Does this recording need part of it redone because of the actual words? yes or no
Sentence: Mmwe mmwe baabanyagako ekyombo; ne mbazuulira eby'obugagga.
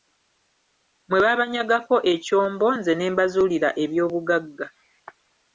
yes